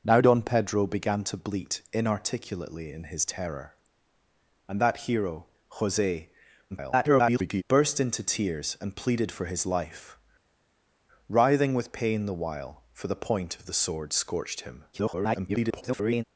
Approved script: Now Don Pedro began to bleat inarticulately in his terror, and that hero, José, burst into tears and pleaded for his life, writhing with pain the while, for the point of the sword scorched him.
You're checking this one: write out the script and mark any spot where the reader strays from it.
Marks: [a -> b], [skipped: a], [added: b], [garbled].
Now Don Pedro began to bleat inarticulately in his terror, and that hero, José, [garbled] burst into tears and pleaded for his life, writhing with pain the while, for the point of the sword scorched him. [garbled]